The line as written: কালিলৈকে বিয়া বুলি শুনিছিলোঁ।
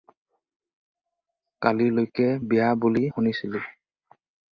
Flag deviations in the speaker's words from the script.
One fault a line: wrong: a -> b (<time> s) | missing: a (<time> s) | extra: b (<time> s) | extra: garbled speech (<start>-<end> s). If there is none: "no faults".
no faults